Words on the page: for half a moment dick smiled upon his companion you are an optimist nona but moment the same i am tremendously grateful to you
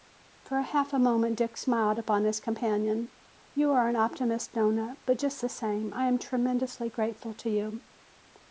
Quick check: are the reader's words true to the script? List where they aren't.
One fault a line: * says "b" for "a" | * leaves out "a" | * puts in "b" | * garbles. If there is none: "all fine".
* says "just" for "moment"